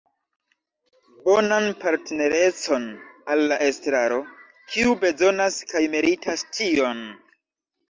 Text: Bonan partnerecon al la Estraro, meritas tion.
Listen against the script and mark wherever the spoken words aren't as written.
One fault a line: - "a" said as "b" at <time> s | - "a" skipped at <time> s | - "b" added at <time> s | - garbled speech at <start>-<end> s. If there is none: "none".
- "kiu bezonas kaj" added at 4.7 s